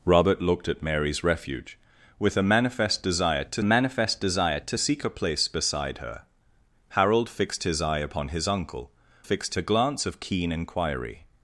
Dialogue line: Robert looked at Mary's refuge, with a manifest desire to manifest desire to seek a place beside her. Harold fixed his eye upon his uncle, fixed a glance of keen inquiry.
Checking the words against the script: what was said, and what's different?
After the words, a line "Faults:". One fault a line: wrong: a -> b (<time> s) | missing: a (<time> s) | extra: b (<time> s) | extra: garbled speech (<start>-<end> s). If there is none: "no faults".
Robert looked at Mary's refuge, with a manifest desire to manifest desire to seek a place beside her. Harold fixed his eye upon his uncle, fixed a glance of keen inquiry.
Faults:
no faults